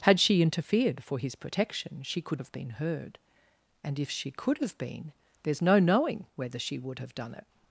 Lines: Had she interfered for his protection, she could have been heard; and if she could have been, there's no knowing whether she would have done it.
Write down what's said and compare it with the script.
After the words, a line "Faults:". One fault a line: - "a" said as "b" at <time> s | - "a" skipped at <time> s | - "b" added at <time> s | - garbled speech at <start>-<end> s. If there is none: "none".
Had she interfered for his protection, she could have been heard; and if she could have been, there's no knowing whether she would have done it.
Faults:
none